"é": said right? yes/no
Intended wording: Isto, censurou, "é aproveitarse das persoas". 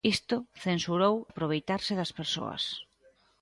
no